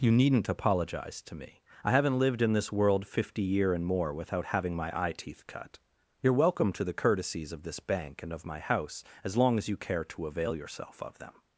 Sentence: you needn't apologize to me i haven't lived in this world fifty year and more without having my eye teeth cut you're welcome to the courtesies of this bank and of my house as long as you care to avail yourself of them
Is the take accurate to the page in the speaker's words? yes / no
yes